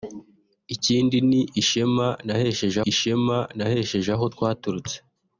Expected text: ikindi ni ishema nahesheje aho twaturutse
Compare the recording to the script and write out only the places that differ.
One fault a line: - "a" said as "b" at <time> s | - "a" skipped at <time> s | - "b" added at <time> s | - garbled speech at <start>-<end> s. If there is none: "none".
- "ishema nahesheje" added at 2.9 s